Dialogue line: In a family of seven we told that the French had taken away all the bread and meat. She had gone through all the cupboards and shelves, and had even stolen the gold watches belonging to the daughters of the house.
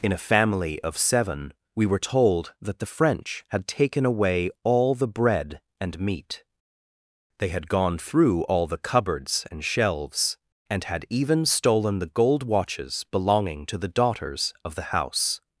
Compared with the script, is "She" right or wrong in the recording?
wrong